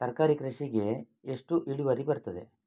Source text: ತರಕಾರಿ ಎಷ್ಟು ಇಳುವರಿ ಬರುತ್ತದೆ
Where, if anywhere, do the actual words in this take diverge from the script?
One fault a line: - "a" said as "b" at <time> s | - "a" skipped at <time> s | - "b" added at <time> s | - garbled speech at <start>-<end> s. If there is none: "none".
- "ಕೃಷಿಗೆ" added at 0.3 s